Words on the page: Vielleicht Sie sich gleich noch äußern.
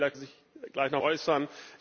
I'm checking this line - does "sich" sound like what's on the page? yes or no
yes